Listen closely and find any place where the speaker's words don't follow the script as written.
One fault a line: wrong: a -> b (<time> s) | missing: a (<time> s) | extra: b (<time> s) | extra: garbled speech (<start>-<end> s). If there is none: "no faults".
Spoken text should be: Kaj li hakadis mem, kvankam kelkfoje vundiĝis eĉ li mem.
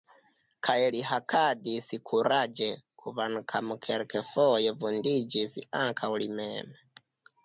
wrong: mem -> kuraĝe (2.1 s)
wrong: eĉ -> ankaŭ (5.8 s)